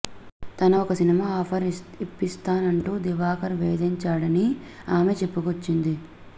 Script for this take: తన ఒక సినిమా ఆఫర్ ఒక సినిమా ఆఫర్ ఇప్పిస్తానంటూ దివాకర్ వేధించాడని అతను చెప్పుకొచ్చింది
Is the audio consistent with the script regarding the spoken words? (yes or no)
no